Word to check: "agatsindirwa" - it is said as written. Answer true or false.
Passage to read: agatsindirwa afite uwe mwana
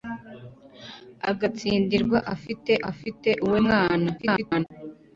true